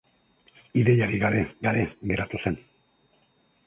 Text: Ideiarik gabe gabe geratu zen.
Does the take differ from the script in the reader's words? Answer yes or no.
no